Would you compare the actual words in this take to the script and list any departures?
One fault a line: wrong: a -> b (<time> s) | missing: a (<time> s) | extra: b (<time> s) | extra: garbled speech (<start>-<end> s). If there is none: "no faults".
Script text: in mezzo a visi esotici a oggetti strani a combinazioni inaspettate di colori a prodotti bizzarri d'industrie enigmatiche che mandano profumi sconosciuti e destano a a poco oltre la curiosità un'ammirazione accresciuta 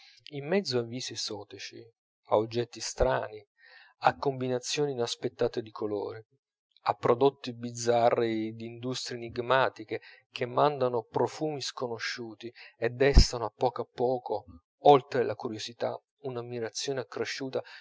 extra: poco (13.5 s)